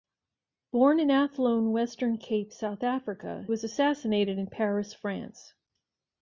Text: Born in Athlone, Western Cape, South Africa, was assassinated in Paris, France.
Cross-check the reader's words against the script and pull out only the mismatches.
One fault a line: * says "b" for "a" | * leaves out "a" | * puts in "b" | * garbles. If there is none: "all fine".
all fine